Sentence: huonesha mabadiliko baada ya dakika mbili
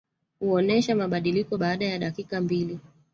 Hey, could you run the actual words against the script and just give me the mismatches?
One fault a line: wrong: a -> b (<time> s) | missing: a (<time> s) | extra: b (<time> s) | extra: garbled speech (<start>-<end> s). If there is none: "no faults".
no faults